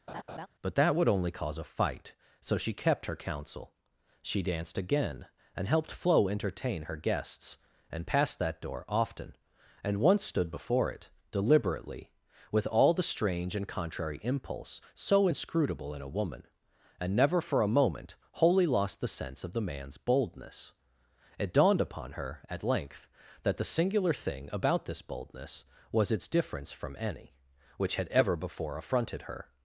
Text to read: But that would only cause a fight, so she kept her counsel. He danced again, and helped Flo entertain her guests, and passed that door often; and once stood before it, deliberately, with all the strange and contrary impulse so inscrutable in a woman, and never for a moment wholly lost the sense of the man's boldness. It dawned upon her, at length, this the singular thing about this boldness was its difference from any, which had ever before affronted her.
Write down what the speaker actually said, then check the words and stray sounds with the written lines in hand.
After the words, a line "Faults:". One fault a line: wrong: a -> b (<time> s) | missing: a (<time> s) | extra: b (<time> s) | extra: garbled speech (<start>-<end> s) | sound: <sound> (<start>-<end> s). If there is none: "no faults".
But that would only cause a fight, so she kept her counsel. She danced again, and helped Flo entertain her guests, and passed that door often; and once stood before it, deliberately, with all the strange and contrary impulse so inscrutable in a woman, and never for a moment wholly lost the sense of the man's boldness. It dawned upon her, at length, that the singular thing about this boldness was its difference from any, which had ever before affronted her.
Faults:
sound: laugh (0.1-0.5 s)
wrong: He -> She (4.2 s)
wrong: this -> that (23.4 s)